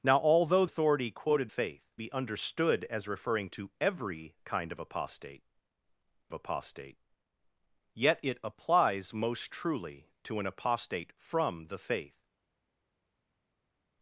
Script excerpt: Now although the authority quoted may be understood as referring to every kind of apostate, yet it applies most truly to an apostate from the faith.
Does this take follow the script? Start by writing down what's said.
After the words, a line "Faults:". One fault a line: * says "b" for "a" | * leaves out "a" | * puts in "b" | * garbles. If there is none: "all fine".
Now although authority quoted faith be understood as referring to every kind of apostate apostate, yet it applies most truly to an apostate from the faith.
Faults:
* leaves out "the"
* says "faith" for "may"
* puts in "apostate"